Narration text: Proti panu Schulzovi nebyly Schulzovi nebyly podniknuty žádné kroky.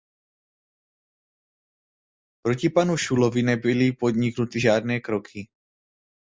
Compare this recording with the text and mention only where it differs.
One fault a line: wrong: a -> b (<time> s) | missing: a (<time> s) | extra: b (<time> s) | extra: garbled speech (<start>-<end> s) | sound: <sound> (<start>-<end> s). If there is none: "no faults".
missing: Schulzovi nebyly (3.9 s)